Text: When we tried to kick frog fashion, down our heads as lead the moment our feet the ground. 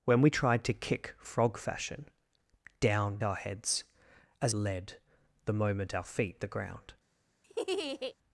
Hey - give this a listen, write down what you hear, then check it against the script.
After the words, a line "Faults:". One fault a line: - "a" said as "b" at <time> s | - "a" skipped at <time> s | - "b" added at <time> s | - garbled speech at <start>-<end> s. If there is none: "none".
When we tried to kick frog fashion, down our heads as lead the moment our feet the ground.
Faults:
none